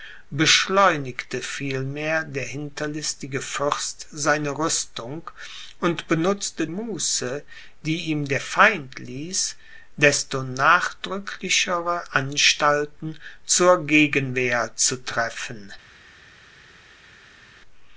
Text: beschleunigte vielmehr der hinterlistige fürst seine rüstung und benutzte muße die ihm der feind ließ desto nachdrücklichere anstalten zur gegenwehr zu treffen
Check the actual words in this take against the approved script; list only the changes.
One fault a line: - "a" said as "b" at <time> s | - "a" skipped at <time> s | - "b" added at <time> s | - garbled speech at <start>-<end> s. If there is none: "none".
none